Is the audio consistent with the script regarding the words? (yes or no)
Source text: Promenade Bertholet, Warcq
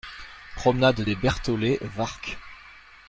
no